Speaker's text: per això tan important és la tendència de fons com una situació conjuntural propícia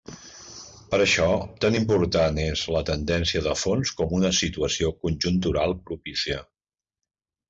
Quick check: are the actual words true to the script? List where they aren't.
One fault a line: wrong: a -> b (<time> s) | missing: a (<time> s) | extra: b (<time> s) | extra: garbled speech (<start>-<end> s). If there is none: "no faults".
no faults